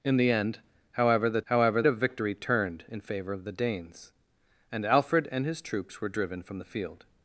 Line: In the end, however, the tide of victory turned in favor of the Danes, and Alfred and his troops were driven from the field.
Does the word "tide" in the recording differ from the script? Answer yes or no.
yes